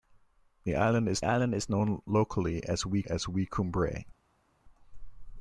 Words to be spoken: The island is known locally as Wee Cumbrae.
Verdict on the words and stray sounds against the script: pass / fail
fail